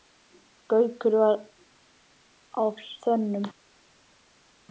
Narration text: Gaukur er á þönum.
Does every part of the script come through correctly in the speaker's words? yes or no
no